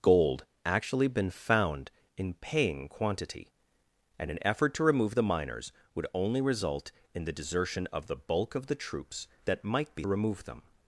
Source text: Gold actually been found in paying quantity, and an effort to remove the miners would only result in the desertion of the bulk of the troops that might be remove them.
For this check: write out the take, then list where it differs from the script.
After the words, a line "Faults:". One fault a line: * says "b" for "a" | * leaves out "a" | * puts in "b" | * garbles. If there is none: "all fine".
Gold actually been found in paying quantity, and an effort to remove the miners would only result in the desertion of the bulk of the troops that might be remove them.
Faults:
all fine